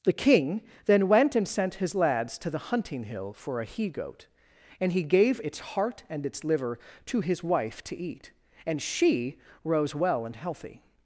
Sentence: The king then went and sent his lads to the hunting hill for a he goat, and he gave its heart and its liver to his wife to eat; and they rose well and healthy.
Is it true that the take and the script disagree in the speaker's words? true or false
true